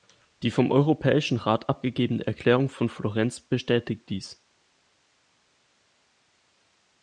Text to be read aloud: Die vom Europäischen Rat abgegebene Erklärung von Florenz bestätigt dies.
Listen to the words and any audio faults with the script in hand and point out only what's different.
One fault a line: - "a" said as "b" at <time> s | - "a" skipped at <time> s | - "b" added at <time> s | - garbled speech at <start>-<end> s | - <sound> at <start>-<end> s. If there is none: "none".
none